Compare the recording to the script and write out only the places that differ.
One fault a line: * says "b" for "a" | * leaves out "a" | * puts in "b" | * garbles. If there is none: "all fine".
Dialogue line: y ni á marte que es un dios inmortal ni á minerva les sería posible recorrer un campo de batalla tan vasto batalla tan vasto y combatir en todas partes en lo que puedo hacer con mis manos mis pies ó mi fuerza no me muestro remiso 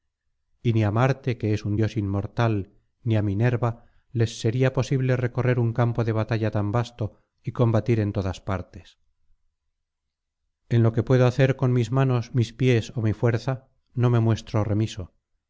* leaves out "batalla tan vasto"